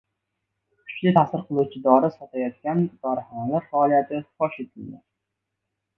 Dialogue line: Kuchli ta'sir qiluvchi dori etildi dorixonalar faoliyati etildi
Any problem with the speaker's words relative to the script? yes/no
yes